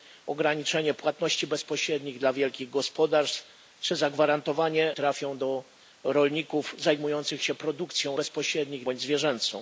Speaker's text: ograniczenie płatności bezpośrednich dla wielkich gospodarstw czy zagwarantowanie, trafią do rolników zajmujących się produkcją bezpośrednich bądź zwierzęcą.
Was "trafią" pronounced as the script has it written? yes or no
yes